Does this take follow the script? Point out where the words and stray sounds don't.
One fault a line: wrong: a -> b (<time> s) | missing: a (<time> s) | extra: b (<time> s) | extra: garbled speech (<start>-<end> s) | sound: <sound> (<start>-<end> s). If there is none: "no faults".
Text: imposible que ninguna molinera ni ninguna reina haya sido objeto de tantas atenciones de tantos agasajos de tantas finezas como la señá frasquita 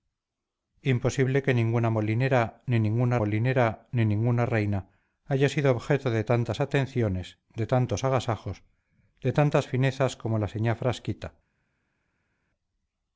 extra: molinera ni ninguna (3.2 s)